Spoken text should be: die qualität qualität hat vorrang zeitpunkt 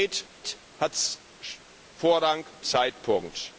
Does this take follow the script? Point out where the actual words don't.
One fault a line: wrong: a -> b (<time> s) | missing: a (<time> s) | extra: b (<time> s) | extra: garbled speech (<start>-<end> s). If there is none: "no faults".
no faults